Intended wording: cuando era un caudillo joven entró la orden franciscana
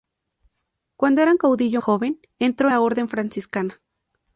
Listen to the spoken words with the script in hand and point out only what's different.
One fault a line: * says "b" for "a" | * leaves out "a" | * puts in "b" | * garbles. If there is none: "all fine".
all fine